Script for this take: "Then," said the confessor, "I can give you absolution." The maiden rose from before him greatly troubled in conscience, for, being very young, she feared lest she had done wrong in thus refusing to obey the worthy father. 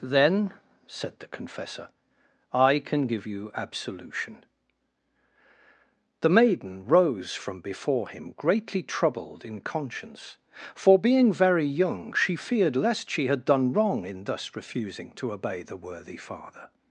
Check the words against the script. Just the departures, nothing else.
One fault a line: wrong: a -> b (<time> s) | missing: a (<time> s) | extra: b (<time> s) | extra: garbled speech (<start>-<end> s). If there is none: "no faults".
no faults